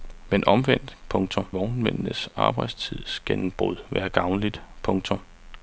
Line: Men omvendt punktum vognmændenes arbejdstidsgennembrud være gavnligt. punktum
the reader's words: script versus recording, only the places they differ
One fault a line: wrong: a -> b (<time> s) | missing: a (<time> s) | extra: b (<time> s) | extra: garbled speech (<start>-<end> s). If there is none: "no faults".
no faults